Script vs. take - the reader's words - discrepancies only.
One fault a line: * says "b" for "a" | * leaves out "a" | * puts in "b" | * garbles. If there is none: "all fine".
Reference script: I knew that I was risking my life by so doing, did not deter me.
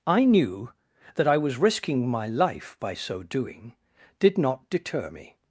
all fine